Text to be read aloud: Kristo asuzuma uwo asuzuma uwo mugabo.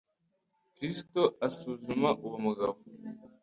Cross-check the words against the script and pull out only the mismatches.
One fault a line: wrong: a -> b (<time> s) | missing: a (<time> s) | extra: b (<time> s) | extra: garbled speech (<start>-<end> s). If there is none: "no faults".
missing: asuzuma uwo (2.4 s)